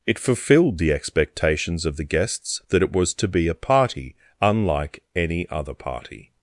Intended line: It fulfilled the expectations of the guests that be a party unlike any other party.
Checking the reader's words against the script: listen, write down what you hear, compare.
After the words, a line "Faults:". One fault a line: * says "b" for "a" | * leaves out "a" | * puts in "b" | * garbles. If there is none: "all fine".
It fulfilled the expectations of the guests that it was to be a party unlike any other party.
Faults:
* puts in "it was to"